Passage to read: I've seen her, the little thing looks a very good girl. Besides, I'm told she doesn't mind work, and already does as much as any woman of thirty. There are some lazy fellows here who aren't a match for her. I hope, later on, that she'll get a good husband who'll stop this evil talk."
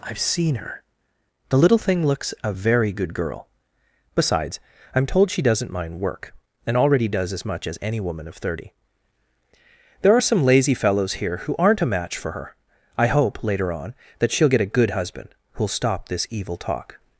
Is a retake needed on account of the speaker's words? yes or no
no